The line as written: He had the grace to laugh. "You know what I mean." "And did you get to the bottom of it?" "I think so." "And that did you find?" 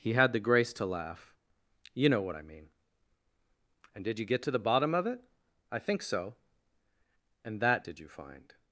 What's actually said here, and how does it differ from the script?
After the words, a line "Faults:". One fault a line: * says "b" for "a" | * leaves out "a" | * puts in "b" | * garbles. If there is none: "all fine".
He had the grace to laugh. "You know what I mean." "And did you get to the bottom of it?" "I think so." "And that did you find?"
Faults:
all fine